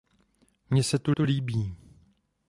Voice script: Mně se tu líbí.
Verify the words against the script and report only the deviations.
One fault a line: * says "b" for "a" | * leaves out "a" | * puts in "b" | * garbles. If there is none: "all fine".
* puts in "tu"